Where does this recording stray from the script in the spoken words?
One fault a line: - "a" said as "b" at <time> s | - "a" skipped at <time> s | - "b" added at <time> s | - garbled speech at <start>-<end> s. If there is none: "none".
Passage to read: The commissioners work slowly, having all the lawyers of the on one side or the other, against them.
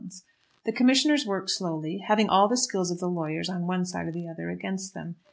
- "lawyers" said as "skill" at 2.6 s
- "lawyers" added at 3.1 s